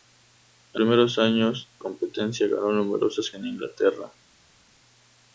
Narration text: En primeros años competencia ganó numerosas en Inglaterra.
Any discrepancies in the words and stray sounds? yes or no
no